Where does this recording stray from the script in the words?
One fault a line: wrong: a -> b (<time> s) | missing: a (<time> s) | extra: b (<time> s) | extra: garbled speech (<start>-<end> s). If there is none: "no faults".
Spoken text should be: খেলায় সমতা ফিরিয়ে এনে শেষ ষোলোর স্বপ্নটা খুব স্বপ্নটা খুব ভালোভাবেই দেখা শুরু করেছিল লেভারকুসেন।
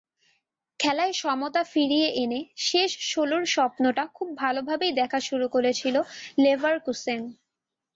missing: স্বপ্নটা খুব (4.3 s)